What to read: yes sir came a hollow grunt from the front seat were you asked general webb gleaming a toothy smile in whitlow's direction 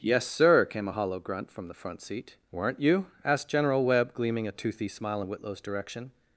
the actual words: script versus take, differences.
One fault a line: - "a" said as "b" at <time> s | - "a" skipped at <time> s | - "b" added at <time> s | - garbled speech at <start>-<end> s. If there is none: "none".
- "were" said as "weren't" at 2.5 s